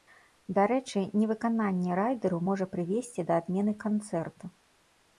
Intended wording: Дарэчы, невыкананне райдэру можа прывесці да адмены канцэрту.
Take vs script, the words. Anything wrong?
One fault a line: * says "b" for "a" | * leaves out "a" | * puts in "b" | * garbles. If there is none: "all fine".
all fine